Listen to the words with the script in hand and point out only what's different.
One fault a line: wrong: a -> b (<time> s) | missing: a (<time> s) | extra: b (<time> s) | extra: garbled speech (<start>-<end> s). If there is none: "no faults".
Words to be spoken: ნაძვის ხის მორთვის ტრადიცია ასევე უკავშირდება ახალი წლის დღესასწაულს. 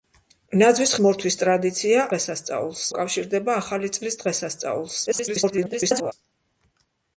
missing: ხის (0.9 s)
wrong: ასევე -> დღესასწაულს (2.1 s)
extra: garbled speech (5.1-6.1 s)